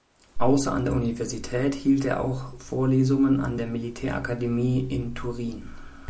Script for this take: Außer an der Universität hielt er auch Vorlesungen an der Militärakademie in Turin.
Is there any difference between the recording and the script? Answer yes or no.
no